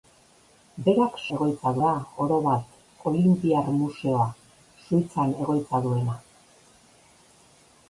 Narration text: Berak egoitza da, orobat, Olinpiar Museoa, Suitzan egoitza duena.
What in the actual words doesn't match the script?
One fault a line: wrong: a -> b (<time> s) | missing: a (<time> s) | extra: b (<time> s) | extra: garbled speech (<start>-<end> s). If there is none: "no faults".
no faults